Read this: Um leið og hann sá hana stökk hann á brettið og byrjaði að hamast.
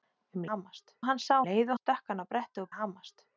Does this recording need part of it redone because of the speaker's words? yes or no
yes